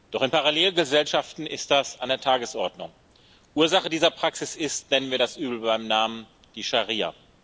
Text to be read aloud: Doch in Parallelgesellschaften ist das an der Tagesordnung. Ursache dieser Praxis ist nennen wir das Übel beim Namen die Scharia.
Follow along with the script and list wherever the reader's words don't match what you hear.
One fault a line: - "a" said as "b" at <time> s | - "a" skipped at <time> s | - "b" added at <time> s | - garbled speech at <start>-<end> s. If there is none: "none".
none